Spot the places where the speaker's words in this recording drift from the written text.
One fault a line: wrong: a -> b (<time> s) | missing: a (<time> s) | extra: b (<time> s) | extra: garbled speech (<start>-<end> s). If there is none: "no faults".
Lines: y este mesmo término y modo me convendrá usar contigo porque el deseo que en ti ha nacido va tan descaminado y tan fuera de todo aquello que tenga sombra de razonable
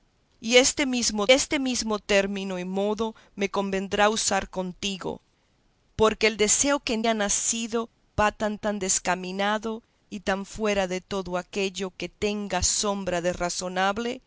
extra: este mesmo (1.3 s)
missing: ti (7.0 s)
extra: tan (8.6 s)